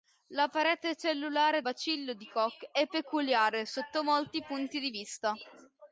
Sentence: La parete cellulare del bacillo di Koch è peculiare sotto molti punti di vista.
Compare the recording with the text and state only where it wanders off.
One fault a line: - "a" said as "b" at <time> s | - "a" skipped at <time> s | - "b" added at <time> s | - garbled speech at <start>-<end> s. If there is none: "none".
- "del" skipped at 1.6 s